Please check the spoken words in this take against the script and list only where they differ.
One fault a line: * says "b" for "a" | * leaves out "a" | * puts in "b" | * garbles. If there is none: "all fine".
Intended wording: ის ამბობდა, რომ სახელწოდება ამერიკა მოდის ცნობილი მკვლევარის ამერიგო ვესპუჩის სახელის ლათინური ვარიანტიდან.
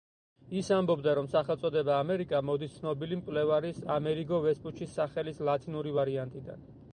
all fine